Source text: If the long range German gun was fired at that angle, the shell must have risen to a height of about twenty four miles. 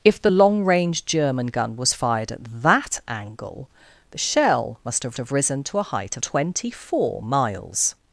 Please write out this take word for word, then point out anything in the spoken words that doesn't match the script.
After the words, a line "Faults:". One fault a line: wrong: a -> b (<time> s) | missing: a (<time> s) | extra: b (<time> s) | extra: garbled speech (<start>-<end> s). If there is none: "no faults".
If the long range German gun was fired at that angle, the shell must have have risen to a height of twenty four miles.
Faults:
extra: have (5.2 s)
missing: about (6.2 s)